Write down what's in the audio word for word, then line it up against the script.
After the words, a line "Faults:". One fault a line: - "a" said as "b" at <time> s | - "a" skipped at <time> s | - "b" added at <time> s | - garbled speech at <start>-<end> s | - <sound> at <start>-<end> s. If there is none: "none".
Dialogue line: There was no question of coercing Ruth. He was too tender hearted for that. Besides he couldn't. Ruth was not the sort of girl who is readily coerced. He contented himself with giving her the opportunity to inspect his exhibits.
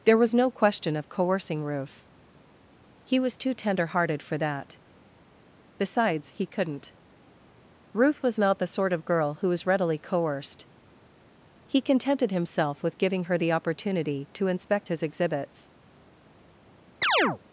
There was no question of coercing Ruth. He was too tender hearted for that. Besides he couldn't. Ruth was not the sort of girl who was readily coerced. He contented himself with giving her the opportunity to inspect his exhibits.
Faults:
- "is" said as "was" at 9.5 s
- chirp at 17.0-17.4 s